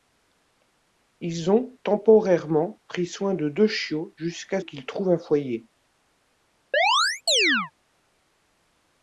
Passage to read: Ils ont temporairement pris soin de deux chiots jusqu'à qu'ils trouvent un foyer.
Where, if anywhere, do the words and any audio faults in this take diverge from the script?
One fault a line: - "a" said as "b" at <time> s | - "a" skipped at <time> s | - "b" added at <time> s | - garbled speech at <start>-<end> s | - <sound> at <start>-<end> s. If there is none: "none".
- chirp at 6.7-7.7 s